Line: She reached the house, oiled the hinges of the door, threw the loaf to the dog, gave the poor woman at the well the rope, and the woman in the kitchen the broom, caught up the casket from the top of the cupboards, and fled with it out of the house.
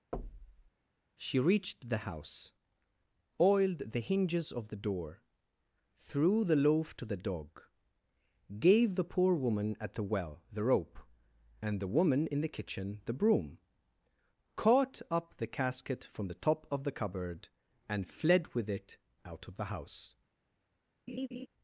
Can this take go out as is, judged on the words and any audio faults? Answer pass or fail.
fail